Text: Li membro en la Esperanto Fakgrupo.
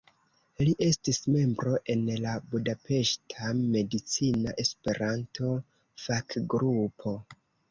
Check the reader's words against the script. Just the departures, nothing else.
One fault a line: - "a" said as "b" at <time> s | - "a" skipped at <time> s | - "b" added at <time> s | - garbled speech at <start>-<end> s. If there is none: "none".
- "estis" added at 0.8 s
- "Budapeŝta Medicina" added at 2.5 s